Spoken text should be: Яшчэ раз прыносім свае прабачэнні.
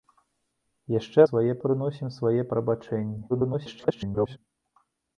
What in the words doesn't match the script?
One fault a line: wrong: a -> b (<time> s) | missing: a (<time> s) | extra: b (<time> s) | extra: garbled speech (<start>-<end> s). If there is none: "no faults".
wrong: раз -> свае (1.3 s)
extra: garbled speech (3.3-4.4 s)